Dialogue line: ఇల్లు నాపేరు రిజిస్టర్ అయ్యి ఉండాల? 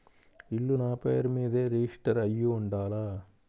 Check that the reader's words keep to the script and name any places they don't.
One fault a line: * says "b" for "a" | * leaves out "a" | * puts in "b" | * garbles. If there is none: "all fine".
* puts in "మీదే"